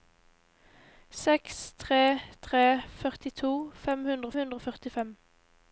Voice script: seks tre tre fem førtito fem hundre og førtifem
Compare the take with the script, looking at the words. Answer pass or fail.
fail